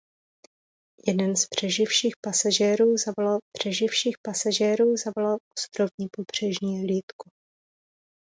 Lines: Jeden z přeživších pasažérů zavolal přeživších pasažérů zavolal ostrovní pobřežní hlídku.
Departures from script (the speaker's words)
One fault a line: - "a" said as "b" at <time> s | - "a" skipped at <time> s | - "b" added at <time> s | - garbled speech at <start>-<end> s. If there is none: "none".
none